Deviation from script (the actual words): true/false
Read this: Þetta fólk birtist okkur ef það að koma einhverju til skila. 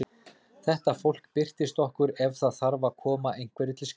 true